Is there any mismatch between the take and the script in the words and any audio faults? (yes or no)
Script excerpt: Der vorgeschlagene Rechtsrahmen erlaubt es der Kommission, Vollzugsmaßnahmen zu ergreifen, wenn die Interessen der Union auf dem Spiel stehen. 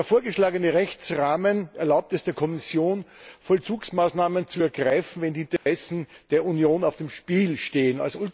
yes